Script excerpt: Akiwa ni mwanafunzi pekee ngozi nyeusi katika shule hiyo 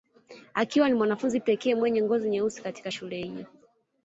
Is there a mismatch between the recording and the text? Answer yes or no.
yes